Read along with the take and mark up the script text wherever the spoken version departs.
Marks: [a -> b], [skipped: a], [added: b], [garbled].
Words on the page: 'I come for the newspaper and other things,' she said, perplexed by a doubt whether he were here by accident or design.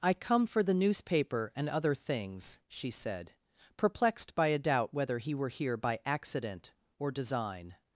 'I come for the newspaper and other things,' she said, perplexed by a doubt whether he were here by accident or design.